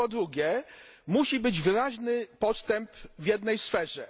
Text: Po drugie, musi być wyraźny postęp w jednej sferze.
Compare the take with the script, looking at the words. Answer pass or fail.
pass